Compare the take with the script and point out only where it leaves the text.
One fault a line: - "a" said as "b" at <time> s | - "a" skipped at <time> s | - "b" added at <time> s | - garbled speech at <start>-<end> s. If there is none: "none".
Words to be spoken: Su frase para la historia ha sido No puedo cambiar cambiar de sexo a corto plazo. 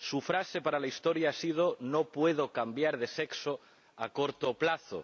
- "cambiar" skipped at 3.0 s